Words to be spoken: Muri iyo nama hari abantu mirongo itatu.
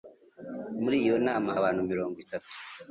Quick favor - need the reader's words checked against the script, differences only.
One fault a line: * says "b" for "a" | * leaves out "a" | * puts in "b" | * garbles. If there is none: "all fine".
* leaves out "hari"